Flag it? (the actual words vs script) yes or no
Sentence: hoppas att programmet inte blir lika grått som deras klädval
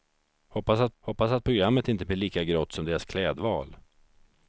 yes